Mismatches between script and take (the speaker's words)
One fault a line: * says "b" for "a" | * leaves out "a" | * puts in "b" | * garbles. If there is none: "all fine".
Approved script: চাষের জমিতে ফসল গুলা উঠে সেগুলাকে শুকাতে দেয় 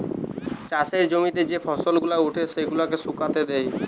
* puts in "যে"